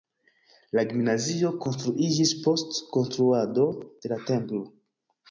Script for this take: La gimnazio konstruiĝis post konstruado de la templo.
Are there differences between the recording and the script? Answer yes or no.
no